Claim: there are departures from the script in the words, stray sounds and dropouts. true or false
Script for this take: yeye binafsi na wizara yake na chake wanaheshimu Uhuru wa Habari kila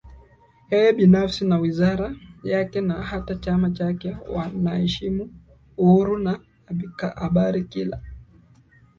true